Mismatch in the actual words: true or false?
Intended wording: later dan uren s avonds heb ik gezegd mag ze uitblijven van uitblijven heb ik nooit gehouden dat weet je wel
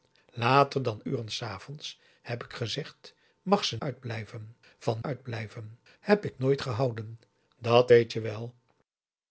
false